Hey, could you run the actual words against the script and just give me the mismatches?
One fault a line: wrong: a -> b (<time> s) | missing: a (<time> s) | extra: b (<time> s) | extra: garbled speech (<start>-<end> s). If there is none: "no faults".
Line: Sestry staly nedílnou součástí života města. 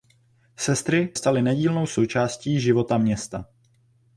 no faults